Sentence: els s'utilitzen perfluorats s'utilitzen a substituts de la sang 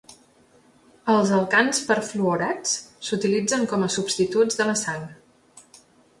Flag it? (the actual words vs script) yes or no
yes